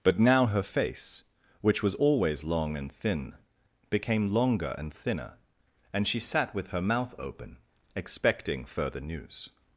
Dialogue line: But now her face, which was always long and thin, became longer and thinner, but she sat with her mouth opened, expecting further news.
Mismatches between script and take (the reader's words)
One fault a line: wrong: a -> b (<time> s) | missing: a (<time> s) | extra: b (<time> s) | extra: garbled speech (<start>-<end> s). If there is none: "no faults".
wrong: but -> and (5.9 s)
wrong: opened -> open (7.2 s)